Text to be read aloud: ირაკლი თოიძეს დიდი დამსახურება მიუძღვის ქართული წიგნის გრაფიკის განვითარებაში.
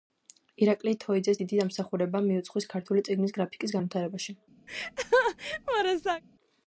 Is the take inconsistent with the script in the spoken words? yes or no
no